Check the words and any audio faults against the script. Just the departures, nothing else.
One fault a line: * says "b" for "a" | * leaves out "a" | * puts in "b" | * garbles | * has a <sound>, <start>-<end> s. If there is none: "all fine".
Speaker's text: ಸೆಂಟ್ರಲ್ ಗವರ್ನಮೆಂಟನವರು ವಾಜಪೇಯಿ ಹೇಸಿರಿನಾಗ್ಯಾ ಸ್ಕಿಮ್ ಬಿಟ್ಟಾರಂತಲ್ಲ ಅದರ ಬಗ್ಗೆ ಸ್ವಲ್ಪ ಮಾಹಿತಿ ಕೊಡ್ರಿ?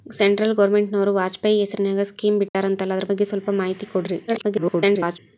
* has a dropout, 2.5-2.5 s
* garbles